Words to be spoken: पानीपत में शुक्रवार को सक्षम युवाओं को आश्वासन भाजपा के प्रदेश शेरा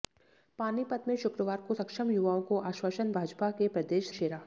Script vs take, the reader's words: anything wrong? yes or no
no